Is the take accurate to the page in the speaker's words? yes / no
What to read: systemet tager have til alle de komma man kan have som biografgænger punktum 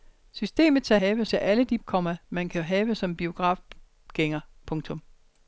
yes